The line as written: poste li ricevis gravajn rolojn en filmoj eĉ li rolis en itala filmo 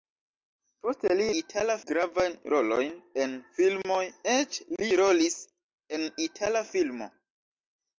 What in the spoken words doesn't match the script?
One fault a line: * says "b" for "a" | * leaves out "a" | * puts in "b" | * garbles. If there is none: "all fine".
* says "itala" for "ricevis"